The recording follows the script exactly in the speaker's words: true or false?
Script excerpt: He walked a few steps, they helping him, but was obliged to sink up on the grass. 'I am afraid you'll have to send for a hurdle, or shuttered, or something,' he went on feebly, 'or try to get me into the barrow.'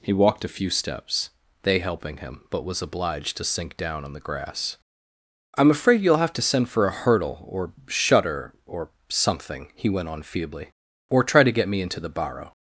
false